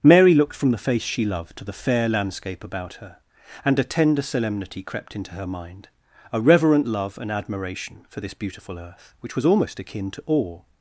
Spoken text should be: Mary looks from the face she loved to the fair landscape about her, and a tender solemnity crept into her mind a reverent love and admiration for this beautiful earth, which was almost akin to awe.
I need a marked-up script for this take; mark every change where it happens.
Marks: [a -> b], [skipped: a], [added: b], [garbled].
Mary [looks -> looked] from the face she loved to the fair landscape about her, and a tender solemnity crept into her mind a reverent love and admiration for this beautiful earth, which was almost akin to awe.